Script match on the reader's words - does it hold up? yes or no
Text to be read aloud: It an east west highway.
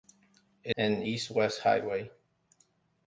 yes